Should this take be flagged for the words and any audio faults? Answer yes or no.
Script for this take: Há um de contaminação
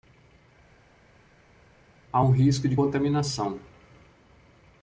yes